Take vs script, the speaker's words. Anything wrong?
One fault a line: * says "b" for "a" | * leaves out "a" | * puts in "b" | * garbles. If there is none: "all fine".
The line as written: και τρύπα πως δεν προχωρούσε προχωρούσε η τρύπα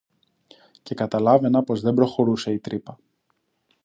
* says "καταλάβαινα" for "τρύπα"
* leaves out "προχωρούσε"